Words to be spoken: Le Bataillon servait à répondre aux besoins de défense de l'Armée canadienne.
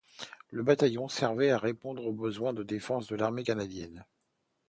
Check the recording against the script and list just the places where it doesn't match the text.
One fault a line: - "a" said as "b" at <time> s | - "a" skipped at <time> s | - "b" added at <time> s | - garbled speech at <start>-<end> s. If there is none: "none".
none